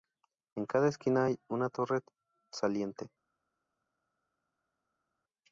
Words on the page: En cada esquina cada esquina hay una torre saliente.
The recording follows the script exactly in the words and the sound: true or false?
false